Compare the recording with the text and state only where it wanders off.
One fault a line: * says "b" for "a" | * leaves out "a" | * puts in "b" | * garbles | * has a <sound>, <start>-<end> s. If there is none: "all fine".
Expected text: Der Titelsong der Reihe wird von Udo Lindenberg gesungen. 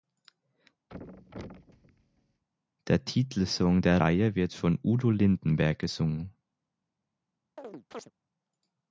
* has a thud, 0.9-2.4 s
* has a chirp, 7.6-8.1 s